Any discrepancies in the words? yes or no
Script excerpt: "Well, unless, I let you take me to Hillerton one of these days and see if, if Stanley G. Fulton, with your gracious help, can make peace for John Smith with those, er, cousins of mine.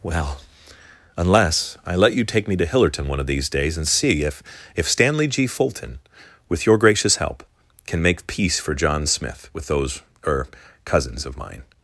no